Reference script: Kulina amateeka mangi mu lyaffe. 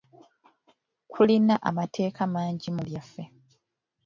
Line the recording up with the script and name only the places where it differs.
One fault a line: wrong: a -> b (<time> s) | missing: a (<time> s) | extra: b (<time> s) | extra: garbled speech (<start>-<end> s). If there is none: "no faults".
no faults